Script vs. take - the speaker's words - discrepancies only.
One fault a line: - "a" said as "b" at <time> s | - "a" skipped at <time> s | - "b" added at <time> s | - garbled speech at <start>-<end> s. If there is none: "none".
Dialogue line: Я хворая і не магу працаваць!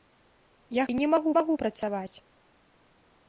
- "хворая" skipped at 0.8 s
- "магу" added at 1.4 s